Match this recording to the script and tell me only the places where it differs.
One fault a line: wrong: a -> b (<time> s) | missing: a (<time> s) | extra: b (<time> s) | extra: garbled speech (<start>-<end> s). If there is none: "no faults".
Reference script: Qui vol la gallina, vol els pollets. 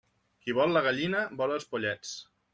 no faults